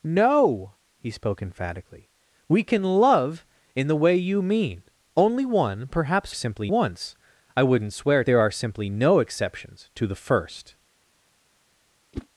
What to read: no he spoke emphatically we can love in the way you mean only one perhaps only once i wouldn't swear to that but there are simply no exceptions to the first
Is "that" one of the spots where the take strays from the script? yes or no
yes